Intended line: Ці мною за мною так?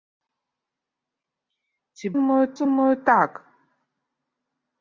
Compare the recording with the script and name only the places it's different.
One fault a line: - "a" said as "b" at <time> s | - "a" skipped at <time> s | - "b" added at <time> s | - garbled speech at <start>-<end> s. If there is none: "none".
none